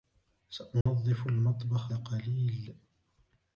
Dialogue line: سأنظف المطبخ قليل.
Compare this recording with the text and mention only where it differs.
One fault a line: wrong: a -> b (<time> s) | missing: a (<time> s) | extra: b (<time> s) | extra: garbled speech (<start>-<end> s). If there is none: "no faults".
no faults